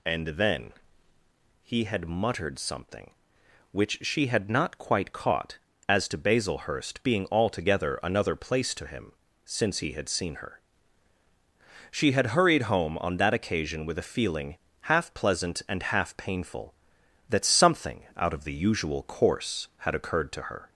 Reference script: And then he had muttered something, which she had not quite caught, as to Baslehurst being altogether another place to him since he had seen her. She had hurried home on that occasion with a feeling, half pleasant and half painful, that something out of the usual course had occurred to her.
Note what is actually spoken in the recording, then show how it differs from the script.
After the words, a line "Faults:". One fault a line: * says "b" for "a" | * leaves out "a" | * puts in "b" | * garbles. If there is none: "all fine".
And then he had muttered something, which she had not quite caught, as to Baslehurst being altogether another place to him since he had seen her. She had hurried home on that occasion with a feeling, half pleasant and half painful, that something out of the usual course had occurred to her.
Faults:
all fine